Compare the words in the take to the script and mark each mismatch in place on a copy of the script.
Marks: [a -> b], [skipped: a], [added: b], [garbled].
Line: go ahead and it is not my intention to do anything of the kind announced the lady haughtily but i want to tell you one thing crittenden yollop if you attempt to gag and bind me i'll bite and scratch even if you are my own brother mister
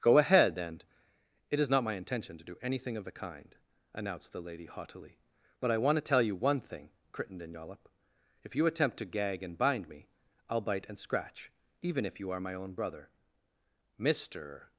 go ahead and it is not my intention to do anything of the kind announced the lady haughtily but i want to tell you one thing crittenden yollop if you attempt to gag and bind me i'll bite and scratch even if you are my own brother mister